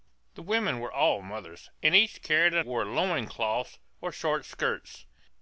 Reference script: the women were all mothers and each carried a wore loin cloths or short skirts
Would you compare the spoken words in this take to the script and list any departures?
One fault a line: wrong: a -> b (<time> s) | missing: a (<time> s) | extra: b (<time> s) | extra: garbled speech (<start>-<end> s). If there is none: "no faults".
no faults